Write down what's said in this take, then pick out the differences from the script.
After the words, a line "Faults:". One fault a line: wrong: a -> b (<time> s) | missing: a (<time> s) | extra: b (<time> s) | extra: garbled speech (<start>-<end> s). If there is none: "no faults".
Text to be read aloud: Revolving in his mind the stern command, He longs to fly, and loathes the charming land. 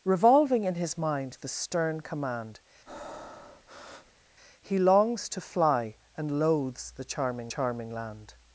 Revolving in his mind the stern command, He longs to fly, and loathes the charming charming land.
Faults:
extra: charming (7.4 s)